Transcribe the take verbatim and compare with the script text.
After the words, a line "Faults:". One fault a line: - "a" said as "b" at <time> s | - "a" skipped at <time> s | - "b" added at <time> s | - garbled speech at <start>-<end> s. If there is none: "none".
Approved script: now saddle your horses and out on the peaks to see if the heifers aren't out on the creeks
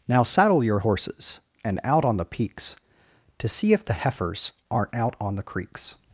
now saddle your horses and out on the peaks to see if the heifers aren't out on the creeks
Faults:
none